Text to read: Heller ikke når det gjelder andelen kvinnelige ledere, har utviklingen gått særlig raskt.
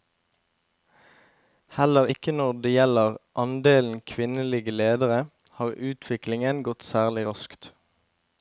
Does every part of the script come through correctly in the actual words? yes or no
yes